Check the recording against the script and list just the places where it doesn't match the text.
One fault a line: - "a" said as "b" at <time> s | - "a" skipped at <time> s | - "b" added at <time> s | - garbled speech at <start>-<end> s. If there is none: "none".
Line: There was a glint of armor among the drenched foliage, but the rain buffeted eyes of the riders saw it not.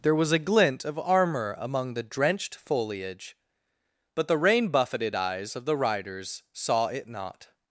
none